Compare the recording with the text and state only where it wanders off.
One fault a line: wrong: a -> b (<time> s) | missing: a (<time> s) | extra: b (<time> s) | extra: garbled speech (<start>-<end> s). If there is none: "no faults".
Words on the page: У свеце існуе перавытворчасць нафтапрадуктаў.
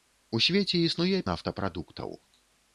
missing: перавытворчасць (1.2 s)